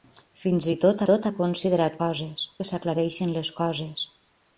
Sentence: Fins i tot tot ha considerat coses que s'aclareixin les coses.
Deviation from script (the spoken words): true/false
false